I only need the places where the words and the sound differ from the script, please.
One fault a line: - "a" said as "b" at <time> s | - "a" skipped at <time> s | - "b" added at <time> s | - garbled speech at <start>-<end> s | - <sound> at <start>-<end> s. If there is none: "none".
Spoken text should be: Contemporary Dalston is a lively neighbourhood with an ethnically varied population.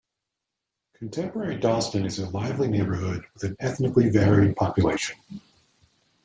none